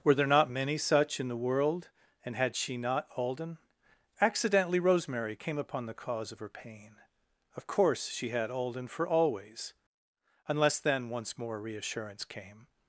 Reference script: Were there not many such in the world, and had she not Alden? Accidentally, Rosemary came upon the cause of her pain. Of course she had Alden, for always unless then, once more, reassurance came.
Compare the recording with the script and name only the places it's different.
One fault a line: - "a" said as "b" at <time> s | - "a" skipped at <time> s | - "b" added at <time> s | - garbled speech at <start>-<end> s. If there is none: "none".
none